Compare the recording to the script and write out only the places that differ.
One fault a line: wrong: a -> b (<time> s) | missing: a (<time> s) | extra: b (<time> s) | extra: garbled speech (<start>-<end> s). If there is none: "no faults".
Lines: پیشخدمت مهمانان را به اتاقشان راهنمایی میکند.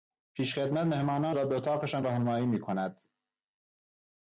no faults